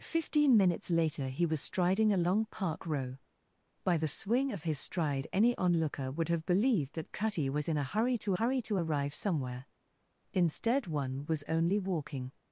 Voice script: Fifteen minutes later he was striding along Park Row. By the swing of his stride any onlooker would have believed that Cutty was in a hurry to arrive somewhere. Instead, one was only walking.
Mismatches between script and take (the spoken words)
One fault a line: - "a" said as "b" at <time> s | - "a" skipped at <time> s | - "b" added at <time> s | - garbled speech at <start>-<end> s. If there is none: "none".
- "hurry to" added at 8.4 s